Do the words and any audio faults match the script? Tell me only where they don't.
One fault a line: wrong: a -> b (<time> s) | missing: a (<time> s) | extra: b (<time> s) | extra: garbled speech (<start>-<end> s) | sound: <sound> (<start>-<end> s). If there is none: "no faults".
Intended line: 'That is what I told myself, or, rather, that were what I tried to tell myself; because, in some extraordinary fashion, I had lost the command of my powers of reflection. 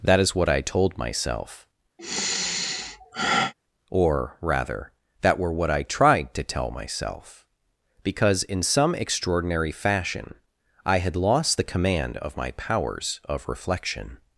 sound: sigh (2.0-3.5 s)